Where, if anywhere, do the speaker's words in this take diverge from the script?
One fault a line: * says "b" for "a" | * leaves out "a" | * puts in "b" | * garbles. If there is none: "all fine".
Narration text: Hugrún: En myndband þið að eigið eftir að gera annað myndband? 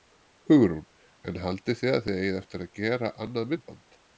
* says "haldið" for "myndband"
* puts in "þið"